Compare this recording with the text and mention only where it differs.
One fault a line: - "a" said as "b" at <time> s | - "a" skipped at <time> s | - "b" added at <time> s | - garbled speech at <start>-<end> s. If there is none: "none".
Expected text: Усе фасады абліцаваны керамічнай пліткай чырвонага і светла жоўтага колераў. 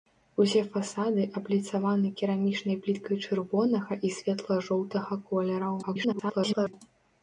- garbled speech at 5.8-6.7 s